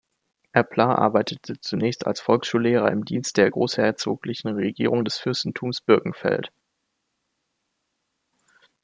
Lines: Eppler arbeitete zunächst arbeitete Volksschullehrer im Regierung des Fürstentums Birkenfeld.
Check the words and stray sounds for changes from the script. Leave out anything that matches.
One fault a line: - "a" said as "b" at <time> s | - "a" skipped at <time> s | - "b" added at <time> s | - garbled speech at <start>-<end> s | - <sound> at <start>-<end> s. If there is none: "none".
- "arbeitete" said as "als" at 2.1 s
- "Dienst der Großherzoglichen" added at 3.0 s